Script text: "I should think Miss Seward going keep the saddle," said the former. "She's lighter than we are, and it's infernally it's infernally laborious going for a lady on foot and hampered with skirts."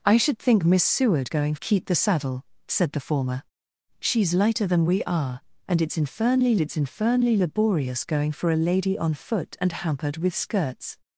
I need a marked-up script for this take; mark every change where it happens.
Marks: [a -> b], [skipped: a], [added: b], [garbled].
"I should think Miss Seward going keep the saddle," said the former. "She's lighter than we are, and it's infernally it's infernally laborious going for a lady on foot and hampered with skirts."